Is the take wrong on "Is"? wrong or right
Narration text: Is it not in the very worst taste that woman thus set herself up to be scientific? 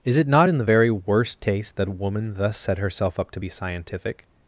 right